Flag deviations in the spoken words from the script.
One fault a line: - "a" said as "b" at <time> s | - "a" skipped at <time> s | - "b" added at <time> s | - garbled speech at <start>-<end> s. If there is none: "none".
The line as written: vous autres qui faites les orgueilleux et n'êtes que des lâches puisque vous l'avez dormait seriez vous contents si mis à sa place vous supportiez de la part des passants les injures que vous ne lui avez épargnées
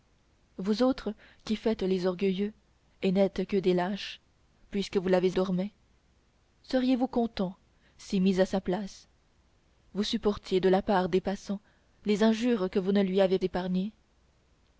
none